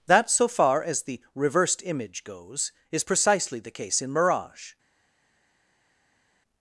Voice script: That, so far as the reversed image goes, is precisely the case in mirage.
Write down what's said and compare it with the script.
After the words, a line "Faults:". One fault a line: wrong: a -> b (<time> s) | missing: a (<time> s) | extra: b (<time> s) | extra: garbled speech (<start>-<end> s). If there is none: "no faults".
That, so far as the reversed image goes, is precisely the case in mirage.
Faults:
no faults